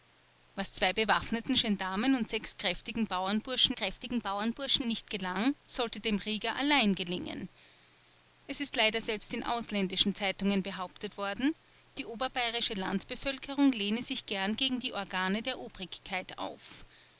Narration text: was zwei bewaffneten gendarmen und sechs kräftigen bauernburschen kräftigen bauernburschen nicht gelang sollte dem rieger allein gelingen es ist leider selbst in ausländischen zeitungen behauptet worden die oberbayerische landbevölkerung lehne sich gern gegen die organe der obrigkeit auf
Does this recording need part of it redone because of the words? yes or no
no